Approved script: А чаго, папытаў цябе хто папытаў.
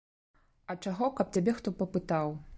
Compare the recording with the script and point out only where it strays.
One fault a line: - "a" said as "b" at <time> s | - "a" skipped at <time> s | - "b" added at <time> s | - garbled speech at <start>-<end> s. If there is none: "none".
- "папытаў" said as "каб" at 1.2 s